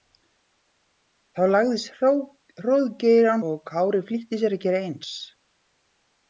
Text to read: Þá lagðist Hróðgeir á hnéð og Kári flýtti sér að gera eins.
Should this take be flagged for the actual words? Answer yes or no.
yes